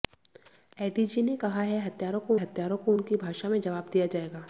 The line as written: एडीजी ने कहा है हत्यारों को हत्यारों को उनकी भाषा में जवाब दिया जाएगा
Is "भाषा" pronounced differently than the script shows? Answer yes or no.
no